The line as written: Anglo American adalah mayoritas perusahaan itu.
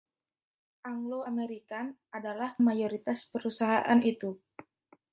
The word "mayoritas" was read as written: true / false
true